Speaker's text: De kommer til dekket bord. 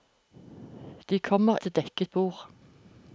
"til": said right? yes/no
yes